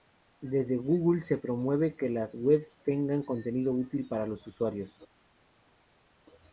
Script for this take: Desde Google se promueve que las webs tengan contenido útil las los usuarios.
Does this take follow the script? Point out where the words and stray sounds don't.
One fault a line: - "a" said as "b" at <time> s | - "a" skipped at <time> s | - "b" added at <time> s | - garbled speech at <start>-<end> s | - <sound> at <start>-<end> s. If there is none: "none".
- "las" said as "para" at 4.1 s